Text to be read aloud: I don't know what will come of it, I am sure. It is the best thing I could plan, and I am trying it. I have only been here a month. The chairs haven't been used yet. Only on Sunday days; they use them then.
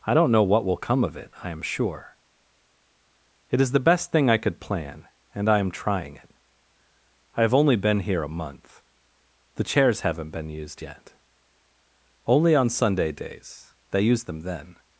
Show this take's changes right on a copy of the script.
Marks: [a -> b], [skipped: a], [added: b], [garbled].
I don't know what will come of it, I am sure. It is the best thing I could plan, and I am trying it. I have only been here a month. The chairs haven't been used yet. Only on Sunday days; they use them then.